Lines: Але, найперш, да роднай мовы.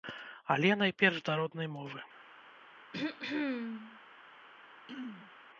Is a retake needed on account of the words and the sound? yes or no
yes